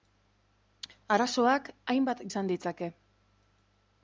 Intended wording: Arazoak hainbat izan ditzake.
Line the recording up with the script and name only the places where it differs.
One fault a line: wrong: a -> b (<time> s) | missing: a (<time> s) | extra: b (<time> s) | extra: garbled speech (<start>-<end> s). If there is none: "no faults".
no faults